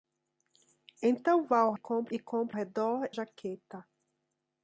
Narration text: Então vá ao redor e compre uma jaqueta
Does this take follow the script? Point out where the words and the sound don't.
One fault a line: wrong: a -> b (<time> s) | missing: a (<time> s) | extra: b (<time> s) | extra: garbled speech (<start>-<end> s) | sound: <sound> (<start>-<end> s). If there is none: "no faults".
wrong: redor -> compre (1.7 s)
wrong: uma -> redor (2.5 s)